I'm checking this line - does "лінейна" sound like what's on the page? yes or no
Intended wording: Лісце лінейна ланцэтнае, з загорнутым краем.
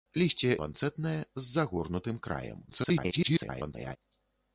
no